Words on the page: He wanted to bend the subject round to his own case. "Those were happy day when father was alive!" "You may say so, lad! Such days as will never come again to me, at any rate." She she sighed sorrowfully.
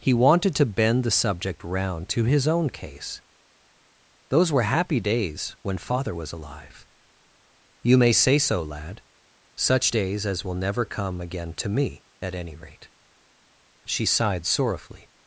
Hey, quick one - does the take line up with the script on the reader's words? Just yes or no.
no